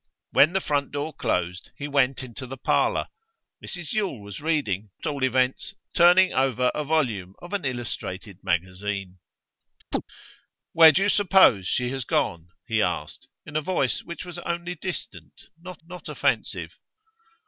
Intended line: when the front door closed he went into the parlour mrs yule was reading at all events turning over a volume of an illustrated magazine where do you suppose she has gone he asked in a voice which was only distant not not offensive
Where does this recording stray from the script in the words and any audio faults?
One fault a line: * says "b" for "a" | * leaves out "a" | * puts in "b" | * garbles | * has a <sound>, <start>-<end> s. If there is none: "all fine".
* has a chirp, 9.9-10.0 s